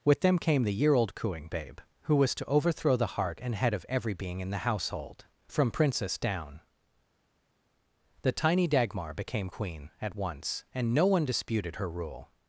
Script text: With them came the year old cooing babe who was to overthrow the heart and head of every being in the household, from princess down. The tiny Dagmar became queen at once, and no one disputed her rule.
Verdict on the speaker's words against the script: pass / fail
pass